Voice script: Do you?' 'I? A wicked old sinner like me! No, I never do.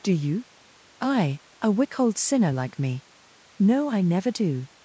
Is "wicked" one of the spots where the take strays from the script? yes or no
yes